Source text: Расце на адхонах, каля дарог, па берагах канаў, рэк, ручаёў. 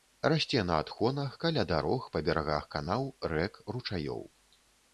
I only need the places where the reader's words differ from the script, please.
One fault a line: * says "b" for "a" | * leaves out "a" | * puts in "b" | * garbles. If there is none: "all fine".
all fine